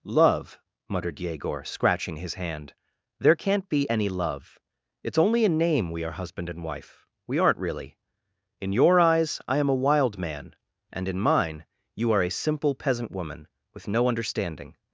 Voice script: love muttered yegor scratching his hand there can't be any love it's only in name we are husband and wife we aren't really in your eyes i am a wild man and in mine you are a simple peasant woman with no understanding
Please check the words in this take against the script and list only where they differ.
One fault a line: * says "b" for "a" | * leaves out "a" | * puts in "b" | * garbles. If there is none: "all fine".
all fine